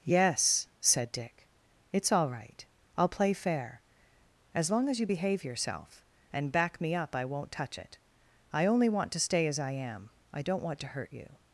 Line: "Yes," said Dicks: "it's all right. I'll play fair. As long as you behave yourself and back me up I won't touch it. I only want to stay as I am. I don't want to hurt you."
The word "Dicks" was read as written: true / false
false